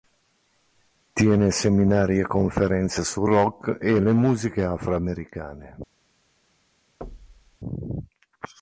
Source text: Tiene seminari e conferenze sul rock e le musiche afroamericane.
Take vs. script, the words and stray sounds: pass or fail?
fail